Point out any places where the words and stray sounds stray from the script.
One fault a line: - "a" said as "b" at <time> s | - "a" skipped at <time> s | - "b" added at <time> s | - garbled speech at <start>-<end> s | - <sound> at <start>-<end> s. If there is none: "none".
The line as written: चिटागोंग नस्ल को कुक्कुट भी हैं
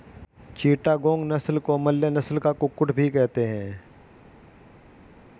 - "मलय नस्ल का" added at 1.8 s
- "कहते" added at 3.1 s